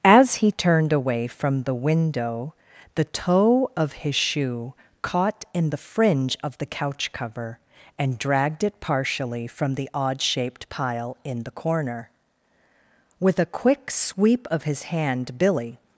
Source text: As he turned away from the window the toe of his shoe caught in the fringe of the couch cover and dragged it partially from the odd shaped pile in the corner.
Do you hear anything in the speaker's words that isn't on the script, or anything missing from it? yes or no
yes